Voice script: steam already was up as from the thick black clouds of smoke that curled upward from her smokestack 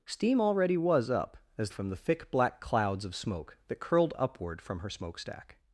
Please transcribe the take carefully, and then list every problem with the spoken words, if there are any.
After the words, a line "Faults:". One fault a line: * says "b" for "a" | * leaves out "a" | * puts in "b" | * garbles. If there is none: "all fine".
steam already was up as from the thick black clouds of smoke that curled upward from her smokestack
Faults:
all fine